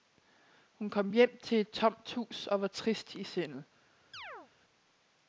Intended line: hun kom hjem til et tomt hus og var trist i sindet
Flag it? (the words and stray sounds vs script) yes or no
yes